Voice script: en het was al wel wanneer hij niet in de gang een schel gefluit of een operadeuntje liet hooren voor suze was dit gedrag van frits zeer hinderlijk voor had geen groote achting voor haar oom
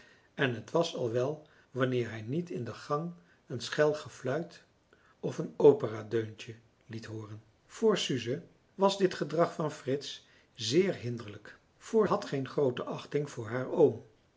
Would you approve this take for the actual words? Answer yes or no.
yes